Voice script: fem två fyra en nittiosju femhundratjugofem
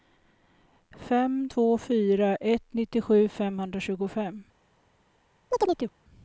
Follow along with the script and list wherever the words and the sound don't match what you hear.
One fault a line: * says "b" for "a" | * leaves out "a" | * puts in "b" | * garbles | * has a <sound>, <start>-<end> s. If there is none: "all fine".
* says "ett" for "en"
* has a chirp, 5.5-5.9 s